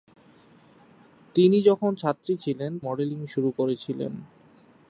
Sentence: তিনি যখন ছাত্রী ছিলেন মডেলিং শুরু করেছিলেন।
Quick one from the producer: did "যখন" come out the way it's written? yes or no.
yes